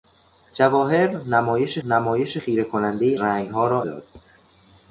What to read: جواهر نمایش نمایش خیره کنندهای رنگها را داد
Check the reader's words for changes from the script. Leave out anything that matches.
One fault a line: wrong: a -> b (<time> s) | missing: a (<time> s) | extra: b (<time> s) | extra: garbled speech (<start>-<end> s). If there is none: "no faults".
no faults